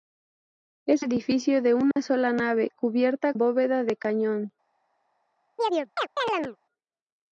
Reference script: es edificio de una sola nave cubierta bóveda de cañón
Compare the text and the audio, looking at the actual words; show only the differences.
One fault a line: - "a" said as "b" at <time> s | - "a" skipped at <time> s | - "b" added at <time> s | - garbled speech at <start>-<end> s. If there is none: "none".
none